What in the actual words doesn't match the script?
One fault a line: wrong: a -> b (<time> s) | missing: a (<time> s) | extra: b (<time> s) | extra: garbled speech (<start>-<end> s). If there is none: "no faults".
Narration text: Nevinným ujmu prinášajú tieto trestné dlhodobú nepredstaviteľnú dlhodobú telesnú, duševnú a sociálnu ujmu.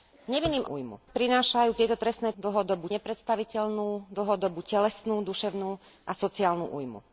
no faults